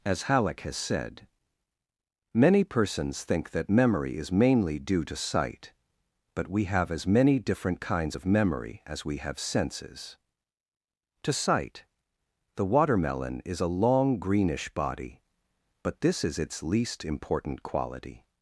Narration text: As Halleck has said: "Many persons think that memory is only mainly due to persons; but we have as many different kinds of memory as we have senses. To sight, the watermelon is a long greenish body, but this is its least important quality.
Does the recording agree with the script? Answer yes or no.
no